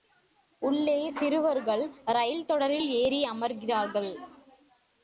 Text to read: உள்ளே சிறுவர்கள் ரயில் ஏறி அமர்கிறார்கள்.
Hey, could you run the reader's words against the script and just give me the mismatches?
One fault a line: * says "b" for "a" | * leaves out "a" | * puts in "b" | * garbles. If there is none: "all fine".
* puts in "தொடரில்"